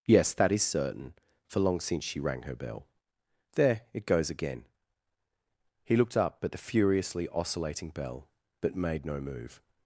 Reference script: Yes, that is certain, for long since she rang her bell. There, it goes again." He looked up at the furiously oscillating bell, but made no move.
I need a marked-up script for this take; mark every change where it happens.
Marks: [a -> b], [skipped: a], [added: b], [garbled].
Yes, that is certain, for long since she rang her bell. There, it goes again." He looked up at the furiously oscillating bell, but made no move.